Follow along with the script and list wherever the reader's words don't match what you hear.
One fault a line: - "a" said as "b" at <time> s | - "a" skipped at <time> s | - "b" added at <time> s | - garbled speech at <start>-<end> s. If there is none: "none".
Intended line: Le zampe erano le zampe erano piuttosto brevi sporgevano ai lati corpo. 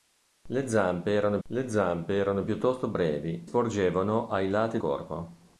none